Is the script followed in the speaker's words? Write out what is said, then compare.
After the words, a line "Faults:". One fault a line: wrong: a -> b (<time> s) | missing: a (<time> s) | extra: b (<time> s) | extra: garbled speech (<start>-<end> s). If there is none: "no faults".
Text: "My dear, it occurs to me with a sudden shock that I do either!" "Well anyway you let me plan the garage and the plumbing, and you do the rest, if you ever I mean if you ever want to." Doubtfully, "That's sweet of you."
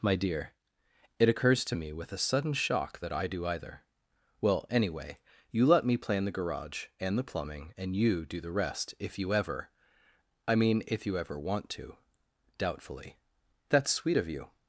"My dear, it occurs to me with a sudden shock that I do either!" "Well anyway you let me plan the garage and the plumbing, and you do the rest, if you ever I mean if you ever want to." Doubtfully, "That's sweet of you."
Faults:
no faults